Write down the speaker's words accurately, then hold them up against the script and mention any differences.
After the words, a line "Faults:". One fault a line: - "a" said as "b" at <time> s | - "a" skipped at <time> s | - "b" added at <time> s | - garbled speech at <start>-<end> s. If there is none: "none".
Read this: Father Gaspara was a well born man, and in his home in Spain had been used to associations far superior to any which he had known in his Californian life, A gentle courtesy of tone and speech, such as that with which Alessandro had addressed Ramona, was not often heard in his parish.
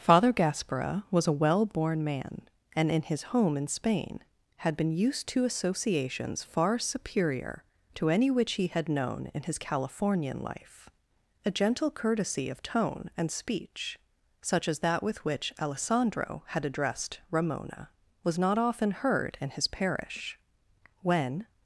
Father Gaspara was a well born man, and in his home in Spain had been used to associations far superior to any which he had known in his Californian life, A gentle courtesy of tone and speech, such as that with which Alessandro had addressed Ramona, was not often heard in his parish. When
Faults:
- "When" added at 21.0 s